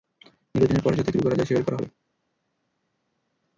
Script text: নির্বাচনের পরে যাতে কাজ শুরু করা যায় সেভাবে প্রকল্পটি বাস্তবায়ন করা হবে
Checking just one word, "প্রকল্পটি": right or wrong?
wrong